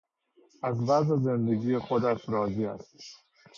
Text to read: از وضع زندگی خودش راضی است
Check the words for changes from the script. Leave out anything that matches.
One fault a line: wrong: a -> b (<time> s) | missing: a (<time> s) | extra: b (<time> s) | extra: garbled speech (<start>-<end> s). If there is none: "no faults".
no faults